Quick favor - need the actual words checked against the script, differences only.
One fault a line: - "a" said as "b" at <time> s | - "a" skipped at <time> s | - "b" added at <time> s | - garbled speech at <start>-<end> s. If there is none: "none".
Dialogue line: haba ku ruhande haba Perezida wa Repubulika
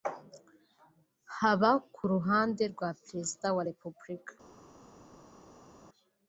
- "haba" said as "rwa" at 2.7 s